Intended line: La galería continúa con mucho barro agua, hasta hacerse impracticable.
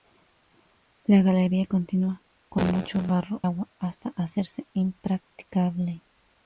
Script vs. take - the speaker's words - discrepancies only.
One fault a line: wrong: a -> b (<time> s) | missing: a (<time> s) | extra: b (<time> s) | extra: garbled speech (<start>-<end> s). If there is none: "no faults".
no faults